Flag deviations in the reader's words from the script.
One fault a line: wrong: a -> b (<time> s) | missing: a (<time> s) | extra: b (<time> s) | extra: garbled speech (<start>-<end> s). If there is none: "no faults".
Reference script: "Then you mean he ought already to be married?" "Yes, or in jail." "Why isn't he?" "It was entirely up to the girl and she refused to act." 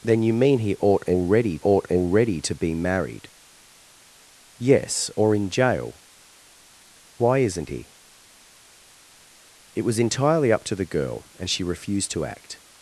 extra: ought already (1.6 s)